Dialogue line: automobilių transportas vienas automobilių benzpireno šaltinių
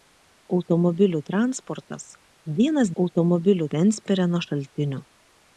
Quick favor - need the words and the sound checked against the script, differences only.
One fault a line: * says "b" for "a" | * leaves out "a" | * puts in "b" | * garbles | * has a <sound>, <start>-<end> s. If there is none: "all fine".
all fine